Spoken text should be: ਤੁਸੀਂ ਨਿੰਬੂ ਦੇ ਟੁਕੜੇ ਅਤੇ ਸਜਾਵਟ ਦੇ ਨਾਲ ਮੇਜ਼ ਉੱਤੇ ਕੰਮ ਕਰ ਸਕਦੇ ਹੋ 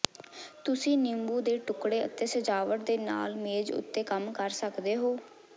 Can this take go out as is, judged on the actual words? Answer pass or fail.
pass